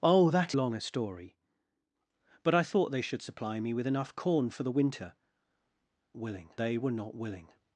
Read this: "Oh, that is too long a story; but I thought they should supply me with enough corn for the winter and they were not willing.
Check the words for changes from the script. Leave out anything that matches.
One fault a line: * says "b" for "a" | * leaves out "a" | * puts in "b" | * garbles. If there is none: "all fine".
* leaves out "is too"
* says "willing" for "and"